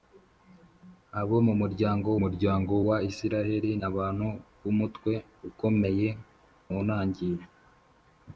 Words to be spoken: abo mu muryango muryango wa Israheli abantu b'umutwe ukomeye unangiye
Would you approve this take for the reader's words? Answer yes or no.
yes